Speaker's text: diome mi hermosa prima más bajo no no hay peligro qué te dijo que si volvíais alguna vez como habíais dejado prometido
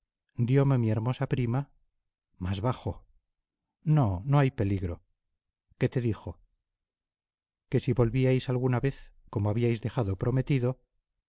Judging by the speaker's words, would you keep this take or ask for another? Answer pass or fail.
pass